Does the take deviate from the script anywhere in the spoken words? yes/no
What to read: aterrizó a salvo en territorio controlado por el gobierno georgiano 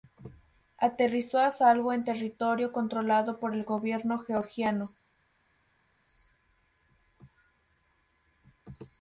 no